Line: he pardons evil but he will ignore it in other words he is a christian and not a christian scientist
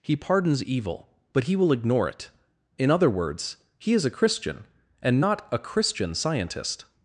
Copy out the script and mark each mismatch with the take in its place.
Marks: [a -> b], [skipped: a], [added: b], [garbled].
he pardons evil but he will ignore it in other words he is a christian and not a christian scientist